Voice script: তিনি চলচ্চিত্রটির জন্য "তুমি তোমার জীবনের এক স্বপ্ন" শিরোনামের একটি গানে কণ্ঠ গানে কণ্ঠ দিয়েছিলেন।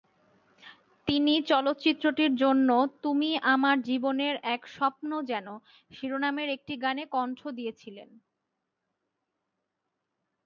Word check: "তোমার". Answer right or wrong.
wrong